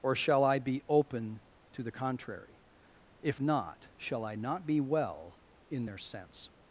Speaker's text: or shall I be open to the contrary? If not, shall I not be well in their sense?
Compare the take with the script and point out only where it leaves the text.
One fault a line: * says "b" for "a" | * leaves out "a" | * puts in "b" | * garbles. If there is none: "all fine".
all fine